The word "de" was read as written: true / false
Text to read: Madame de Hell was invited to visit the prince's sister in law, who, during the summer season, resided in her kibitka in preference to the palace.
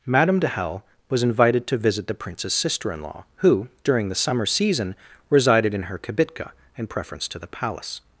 true